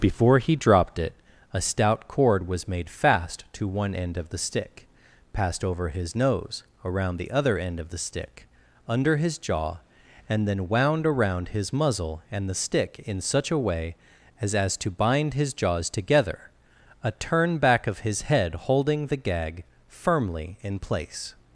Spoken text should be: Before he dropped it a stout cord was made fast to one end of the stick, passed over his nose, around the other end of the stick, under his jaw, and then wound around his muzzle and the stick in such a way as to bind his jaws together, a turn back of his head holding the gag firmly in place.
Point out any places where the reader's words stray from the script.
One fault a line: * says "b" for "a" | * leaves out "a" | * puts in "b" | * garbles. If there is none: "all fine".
* puts in "as"